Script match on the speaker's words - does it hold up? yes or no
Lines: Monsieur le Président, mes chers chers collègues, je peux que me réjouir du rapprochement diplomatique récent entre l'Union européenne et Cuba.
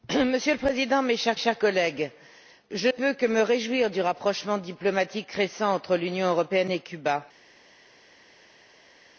yes